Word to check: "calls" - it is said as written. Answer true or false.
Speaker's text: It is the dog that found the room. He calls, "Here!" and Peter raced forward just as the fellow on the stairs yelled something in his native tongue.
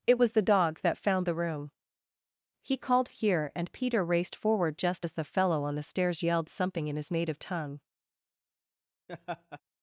false